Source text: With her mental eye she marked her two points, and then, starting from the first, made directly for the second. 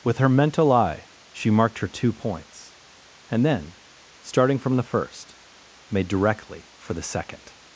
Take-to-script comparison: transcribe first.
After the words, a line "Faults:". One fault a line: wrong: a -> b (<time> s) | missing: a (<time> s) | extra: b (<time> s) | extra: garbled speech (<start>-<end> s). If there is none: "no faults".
With her mental eye she marked her two points, and then, starting from the first, made directly for the second.
Faults:
no faults